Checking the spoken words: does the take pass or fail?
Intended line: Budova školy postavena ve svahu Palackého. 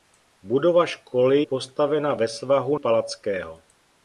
pass